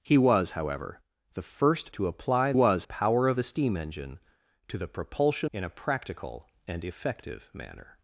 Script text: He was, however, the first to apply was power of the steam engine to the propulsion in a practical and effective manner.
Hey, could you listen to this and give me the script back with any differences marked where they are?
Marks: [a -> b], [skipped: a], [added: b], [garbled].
He was, however, the first to apply was power of the steam engine to the propulsion in a practical and effective manner.